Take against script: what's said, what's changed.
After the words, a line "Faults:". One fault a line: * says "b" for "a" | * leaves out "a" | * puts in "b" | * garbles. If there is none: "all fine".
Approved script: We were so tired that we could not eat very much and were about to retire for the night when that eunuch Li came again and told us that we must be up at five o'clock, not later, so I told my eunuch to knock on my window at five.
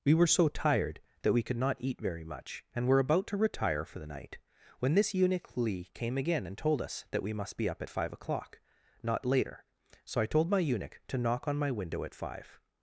We were so tired that we could not eat very much and were about to retire for the night when this eunuch Li came again and told us that we must be up at five o'clock, not later, so I told my eunuch to knock on my window at five.
Faults:
* says "this" for "that"